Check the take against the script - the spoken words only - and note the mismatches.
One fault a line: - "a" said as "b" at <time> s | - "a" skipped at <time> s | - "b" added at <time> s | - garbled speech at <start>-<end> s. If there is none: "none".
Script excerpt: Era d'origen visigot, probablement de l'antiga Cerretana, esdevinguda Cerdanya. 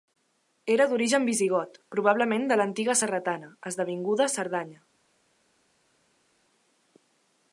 none